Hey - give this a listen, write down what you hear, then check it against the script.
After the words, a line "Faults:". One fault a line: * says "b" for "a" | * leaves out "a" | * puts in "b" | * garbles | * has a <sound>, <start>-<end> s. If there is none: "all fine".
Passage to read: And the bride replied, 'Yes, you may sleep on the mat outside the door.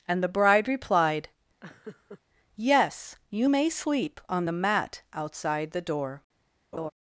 And the bride replied, 'Yes, you may sleep on the mat outside the door.
Faults:
* has a laugh, 1.6-2.2 s
* has a laugh, 6.7-6.9 s